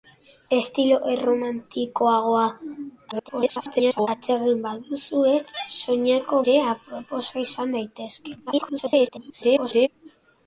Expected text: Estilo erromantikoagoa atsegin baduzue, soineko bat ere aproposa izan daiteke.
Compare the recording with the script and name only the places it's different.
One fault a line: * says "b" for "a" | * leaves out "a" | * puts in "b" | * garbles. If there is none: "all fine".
* garbles
* leaves out "bat"
* garbles